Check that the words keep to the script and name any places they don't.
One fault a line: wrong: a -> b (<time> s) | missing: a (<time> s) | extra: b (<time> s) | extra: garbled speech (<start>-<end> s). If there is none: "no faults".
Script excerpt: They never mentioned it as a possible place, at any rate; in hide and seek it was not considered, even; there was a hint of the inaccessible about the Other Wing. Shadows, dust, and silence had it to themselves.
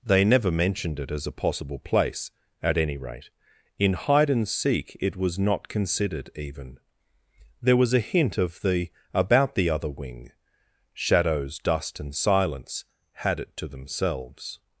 missing: inaccessible (8.9 s)